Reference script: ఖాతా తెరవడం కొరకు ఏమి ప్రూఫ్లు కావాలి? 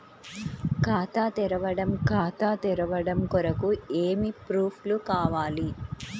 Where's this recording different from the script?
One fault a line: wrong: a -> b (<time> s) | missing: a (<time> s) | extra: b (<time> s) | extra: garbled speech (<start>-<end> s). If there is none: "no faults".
extra: ఖాతా తెరవడం (2.1 s)